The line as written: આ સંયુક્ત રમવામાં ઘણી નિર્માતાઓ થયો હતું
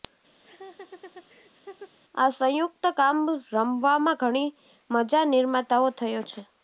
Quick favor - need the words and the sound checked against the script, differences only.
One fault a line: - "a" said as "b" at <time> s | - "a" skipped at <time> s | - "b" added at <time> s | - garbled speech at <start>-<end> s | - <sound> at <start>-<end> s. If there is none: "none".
- laugh at 0.4-2.0 s
- "કામ" added at 3.0 s
- "મજા" added at 4.9 s
- "હતું" said as "છે" at 6.2 s